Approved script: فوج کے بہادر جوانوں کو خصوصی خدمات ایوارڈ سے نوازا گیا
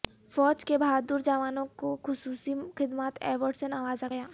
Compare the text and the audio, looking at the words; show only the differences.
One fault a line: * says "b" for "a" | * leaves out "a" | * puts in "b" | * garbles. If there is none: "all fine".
all fine